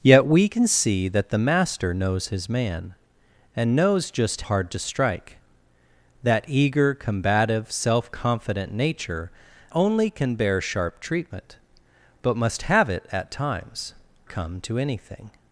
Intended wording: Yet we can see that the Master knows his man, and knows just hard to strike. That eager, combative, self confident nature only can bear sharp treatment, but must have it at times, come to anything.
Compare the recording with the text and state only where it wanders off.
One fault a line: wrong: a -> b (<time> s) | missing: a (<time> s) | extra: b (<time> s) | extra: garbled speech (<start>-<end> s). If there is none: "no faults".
no faults